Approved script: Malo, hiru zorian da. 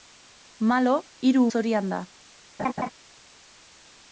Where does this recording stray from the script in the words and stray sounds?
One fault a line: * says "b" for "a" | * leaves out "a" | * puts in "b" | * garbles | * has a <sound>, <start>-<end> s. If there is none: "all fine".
* has a laugh, 2.6-2.9 s